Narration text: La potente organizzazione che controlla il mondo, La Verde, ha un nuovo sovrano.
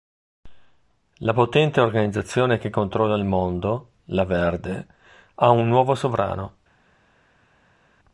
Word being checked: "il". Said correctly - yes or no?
yes